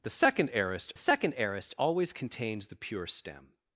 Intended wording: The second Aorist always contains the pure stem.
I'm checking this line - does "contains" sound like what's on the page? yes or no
yes